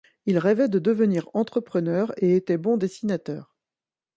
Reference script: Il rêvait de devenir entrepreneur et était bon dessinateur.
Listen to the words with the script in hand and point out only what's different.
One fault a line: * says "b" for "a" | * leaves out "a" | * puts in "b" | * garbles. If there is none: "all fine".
all fine